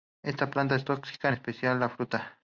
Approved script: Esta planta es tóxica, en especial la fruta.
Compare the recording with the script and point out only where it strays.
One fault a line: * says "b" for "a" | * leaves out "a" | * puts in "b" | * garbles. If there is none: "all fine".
all fine